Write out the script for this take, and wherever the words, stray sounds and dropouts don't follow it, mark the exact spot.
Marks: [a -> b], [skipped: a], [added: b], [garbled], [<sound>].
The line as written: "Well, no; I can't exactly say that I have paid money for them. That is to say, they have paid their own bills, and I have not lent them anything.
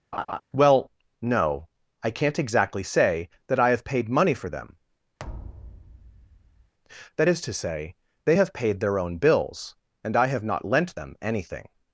[laugh] "Well, no; I can't exactly say that I have paid money for them. [thud] That is to say, they have paid their own bills, and I have not lent them anything.